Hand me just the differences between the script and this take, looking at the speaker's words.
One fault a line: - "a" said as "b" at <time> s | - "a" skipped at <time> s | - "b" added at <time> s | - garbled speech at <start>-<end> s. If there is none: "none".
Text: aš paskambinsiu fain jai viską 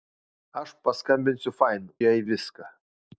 none